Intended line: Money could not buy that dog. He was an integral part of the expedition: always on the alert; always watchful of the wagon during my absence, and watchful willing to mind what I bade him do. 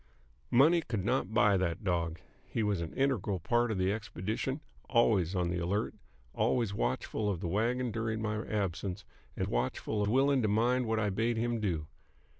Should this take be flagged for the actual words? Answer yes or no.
no